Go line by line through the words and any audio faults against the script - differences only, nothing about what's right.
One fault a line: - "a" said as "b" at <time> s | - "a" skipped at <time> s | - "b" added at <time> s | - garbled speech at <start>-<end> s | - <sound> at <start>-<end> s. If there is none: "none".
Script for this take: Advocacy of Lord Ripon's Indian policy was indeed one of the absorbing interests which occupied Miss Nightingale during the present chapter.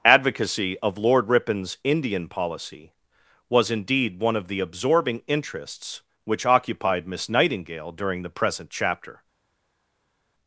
none